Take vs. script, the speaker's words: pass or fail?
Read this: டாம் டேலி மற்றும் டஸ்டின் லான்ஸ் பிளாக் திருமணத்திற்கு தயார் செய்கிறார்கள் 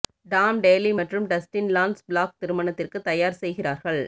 pass